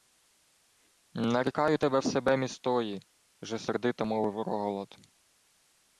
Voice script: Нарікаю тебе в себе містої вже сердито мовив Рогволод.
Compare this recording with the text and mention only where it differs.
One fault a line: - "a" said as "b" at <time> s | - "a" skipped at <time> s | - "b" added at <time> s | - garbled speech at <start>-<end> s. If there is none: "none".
none